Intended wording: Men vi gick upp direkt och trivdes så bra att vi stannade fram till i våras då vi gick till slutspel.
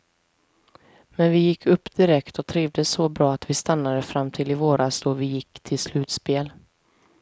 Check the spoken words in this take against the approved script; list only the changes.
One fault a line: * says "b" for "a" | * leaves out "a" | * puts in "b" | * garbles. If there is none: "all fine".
all fine